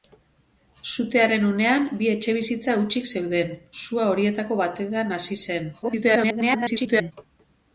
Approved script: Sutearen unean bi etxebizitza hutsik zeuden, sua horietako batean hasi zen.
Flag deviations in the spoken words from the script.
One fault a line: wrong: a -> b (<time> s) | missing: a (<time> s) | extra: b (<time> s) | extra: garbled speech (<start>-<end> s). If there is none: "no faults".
extra: garbled speech (5.8-7.1 s)